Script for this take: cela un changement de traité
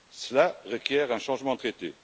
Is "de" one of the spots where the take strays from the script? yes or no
no